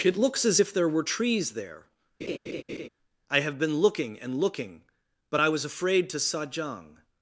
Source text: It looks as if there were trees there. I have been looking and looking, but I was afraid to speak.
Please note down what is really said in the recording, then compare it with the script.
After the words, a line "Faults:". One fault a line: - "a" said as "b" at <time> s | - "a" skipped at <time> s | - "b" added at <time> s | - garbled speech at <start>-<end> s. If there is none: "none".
It looks as if there were trees there. I have been looking and looking, but I was afraid to sajang.
Faults:
- "speak" said as "sajang" at 6.2 s